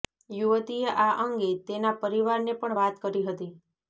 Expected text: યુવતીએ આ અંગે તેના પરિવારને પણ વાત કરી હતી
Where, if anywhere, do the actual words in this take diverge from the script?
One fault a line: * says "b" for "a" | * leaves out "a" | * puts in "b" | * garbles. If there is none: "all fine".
all fine